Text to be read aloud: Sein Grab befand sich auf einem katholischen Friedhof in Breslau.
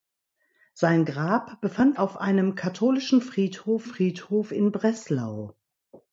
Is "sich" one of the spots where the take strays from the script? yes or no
yes